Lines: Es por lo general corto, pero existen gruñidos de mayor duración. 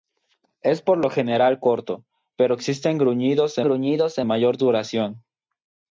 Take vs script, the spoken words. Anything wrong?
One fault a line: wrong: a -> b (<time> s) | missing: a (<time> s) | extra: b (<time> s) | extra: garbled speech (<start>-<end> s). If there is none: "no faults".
extra: gruñidos de (3.6 s)